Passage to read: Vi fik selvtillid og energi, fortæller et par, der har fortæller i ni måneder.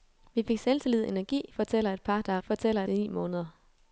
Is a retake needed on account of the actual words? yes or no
no